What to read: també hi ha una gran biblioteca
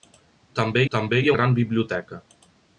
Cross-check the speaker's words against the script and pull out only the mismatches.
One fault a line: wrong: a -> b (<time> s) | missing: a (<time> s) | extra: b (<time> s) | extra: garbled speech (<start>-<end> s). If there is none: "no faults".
extra: també (0.9 s)
missing: una (1.4 s)